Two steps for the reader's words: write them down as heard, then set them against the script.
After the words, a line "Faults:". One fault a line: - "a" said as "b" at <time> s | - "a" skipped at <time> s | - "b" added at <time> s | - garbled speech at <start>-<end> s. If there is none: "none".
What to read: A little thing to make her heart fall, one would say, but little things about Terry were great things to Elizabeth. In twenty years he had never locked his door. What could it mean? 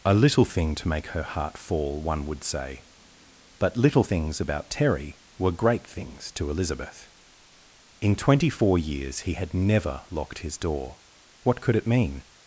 A little thing to make her heart fall, one would say, but little things about Terry were great things to Elizabeth. In twenty four years he had never locked his door. What could it mean?
Faults:
- "four" added at 8.5 s